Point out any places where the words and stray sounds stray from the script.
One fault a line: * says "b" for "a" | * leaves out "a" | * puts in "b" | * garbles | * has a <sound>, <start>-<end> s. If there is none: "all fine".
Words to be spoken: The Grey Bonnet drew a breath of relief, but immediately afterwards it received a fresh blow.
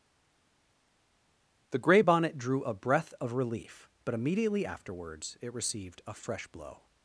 all fine